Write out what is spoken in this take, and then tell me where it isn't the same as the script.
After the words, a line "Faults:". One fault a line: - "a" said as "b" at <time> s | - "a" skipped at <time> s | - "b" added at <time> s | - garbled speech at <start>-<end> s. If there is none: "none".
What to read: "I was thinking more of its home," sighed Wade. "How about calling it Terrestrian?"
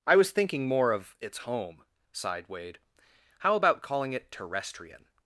"I was thinking more of its home," sighed Wade. "How about calling it Terrestrian?"
Faults:
none